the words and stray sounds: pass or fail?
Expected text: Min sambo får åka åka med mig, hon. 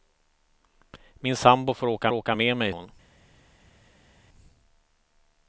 pass